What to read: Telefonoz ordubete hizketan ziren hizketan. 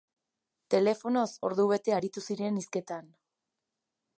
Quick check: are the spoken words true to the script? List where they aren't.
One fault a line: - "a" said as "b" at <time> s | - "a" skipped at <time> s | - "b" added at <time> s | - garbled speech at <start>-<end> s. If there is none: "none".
- "hizketan" said as "aritu" at 2.0 s